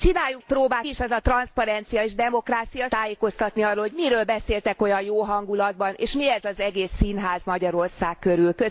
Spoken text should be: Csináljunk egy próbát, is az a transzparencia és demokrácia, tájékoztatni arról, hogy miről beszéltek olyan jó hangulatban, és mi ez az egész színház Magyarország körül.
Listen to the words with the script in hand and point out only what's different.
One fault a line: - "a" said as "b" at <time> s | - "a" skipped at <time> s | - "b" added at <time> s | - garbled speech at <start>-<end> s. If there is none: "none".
none